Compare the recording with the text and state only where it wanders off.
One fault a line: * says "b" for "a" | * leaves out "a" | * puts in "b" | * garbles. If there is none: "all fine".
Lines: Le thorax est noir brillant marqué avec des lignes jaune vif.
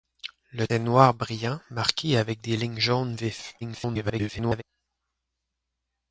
* leaves out "thorax"
* garbles